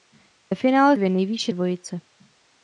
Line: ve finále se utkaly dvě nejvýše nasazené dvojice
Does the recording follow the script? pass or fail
fail